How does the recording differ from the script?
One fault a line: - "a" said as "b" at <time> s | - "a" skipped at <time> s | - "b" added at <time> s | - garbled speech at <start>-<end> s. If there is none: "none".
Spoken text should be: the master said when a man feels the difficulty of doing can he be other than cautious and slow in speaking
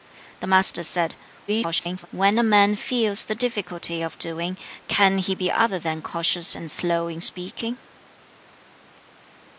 - garbled speech at 1.5-2.1 s